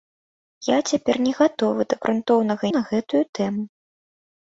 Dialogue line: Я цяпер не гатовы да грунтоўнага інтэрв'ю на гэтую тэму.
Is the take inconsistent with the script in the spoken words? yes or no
yes